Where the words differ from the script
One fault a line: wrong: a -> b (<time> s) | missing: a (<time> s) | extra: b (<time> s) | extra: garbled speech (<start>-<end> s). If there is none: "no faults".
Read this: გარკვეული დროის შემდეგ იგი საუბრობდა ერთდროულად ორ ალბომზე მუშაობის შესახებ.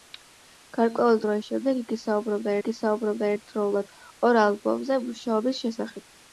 extra: იგი საუბრობდა (2.6 s)